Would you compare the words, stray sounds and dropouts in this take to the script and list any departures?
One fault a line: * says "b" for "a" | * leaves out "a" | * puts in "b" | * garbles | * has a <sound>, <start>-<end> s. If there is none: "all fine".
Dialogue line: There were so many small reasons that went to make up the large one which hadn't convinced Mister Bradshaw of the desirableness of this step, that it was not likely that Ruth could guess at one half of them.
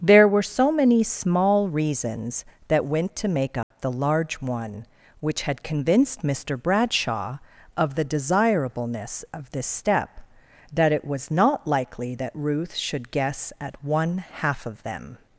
* has a dropout, 3.6-3.7 s
* says "had" for "hadn't"
* says "should" for "could"